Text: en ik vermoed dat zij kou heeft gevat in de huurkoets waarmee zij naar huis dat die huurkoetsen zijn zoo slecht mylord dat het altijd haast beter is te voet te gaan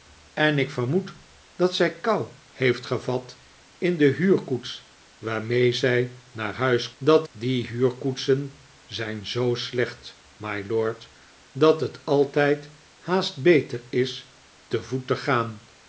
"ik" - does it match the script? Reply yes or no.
yes